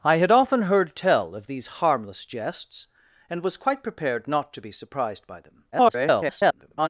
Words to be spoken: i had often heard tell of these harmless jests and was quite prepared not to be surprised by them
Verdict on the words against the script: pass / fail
fail